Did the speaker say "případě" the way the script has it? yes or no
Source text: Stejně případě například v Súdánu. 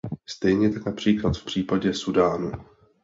no